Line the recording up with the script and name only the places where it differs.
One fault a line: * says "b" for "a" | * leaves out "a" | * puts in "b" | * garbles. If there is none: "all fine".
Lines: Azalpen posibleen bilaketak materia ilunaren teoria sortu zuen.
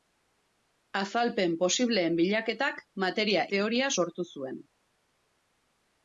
* leaves out "ilunaren"